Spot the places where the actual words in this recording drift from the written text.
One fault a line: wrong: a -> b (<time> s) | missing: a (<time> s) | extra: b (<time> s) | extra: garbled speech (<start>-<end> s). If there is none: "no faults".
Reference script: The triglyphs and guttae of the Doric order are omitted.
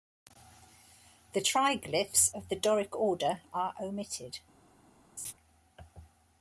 missing: and guttae (2.3 s)